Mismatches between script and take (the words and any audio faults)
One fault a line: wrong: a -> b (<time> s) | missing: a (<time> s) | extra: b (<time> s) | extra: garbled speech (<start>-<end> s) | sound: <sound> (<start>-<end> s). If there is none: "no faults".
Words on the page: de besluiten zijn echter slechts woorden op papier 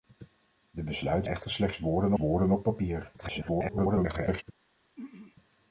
missing: zijn (1.3 s)
extra: woorden (2.2 s)
extra: garbled speech (3.2-4.4 s)
sound: throat clearing (5.0-5.4 s)